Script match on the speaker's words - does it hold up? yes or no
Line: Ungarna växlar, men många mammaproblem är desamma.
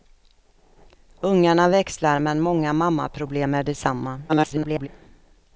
no